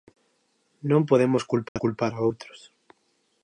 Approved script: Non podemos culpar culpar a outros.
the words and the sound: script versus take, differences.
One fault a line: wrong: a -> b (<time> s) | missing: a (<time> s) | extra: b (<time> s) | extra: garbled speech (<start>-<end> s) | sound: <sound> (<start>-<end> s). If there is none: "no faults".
sound: dropout (1.7-1.8 s)